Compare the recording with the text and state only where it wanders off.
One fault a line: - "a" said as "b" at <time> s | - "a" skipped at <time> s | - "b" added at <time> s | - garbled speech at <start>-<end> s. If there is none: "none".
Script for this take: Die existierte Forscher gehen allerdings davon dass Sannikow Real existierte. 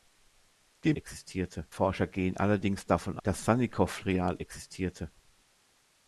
none